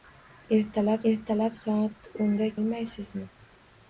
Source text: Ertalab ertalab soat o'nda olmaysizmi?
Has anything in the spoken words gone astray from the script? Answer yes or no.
no